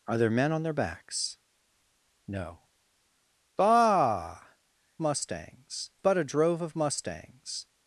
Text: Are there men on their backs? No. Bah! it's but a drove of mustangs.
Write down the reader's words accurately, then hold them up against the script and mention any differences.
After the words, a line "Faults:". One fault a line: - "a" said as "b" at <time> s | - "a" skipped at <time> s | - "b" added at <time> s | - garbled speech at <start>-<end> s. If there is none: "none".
Are there men on their backs? No. Bah! mustangs but a drove of mustangs.
Faults:
- "it's" said as "mustangs" at 5.0 s